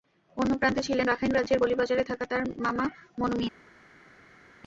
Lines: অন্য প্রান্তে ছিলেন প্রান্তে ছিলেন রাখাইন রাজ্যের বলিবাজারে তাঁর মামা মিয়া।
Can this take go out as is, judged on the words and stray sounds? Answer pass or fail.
fail